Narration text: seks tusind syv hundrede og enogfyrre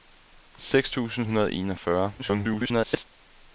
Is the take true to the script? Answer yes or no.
no